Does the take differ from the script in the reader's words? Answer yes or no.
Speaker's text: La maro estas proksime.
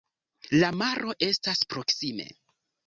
no